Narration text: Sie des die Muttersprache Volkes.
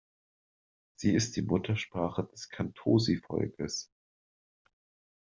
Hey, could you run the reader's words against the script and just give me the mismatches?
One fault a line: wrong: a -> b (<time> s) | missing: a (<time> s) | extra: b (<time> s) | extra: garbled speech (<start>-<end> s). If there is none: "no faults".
wrong: des -> ist (1.1 s)
extra: des Kantosi (2.2 s)